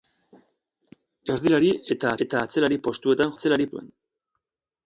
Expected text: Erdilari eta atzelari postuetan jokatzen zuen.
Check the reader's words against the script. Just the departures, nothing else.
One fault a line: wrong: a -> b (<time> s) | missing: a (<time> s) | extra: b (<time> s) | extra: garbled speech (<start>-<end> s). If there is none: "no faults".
extra: eta (2.2 s)
wrong: jokatzen -> atzelari (3.3 s)